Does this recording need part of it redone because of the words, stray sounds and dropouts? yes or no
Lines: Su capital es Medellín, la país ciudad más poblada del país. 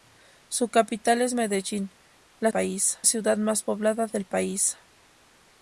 no